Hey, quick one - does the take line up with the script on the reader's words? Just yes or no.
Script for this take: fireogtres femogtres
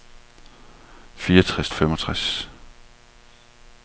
yes